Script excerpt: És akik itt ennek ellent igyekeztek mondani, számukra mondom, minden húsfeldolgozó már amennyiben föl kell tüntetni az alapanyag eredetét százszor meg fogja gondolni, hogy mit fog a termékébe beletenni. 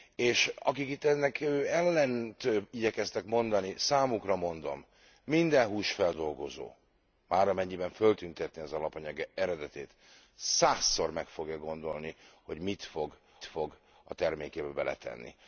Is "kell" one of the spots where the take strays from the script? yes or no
yes